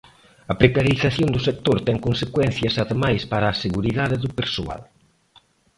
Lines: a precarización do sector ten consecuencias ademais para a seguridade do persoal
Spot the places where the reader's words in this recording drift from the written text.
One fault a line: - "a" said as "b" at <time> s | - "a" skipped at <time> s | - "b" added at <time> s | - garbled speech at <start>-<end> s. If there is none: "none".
none